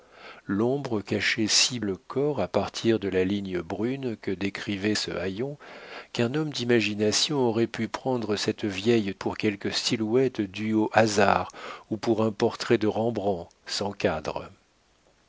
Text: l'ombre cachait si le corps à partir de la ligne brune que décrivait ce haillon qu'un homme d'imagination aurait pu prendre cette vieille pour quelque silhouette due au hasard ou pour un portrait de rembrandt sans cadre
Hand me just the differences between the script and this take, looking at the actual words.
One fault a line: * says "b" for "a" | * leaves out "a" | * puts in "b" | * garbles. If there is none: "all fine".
all fine